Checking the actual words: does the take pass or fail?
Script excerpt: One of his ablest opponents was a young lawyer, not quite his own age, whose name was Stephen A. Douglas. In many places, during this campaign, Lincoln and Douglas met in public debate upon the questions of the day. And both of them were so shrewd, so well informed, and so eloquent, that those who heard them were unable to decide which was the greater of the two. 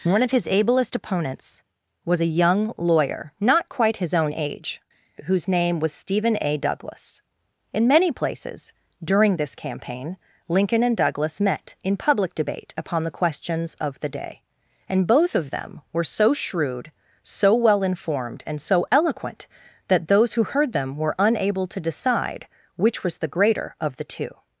pass